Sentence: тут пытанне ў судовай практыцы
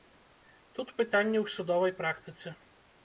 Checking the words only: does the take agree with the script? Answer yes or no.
yes